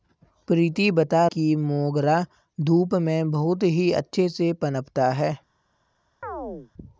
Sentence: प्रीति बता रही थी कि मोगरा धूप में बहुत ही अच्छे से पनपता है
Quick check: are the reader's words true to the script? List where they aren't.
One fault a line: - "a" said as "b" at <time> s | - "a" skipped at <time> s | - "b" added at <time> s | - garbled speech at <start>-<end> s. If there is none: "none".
- "रही थी" skipped at 1.2 s